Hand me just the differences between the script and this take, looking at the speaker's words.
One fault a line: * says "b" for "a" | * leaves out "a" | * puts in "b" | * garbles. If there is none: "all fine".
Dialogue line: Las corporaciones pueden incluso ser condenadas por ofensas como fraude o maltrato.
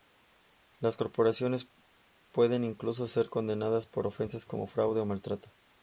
all fine